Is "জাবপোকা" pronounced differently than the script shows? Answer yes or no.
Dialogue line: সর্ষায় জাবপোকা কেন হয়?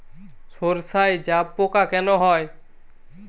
no